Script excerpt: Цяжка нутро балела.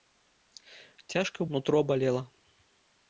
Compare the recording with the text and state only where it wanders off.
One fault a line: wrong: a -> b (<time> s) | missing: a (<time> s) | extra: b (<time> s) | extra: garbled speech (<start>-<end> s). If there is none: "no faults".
no faults